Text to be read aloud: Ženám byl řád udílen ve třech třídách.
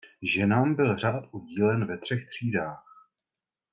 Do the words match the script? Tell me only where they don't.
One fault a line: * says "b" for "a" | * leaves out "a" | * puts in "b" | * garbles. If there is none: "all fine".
all fine